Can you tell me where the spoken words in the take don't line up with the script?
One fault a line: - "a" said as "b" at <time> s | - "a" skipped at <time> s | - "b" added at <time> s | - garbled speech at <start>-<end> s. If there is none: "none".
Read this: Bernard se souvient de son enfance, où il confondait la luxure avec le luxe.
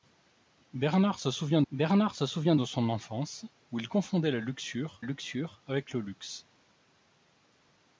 - "bernard se souvient" added at 1.7 s
- "luxure" added at 5.0 s